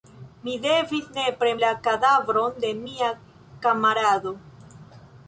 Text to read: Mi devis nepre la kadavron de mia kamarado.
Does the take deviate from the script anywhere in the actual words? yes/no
no